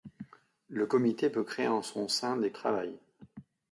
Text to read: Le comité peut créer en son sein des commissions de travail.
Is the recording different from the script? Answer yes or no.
yes